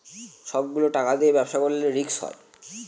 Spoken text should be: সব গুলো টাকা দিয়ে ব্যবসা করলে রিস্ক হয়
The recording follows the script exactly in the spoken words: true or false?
true